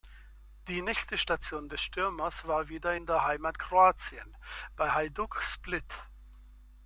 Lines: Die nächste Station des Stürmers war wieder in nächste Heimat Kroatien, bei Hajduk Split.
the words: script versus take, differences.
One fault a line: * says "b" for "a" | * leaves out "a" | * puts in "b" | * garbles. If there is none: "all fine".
* says "der" for "nächste"